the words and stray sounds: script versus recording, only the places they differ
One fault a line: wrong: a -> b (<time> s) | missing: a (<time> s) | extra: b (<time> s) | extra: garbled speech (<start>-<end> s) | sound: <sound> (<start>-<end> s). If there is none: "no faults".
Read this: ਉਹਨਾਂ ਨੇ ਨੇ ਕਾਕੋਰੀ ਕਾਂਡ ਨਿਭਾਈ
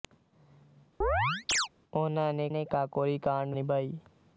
sound: chirp (1.0-1.7 s)